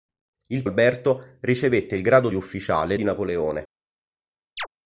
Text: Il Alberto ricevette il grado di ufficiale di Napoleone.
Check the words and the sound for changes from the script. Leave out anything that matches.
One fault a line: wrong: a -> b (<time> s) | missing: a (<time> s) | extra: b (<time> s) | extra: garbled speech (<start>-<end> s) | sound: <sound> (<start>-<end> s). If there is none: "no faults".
sound: chirp (4.6-4.7 s)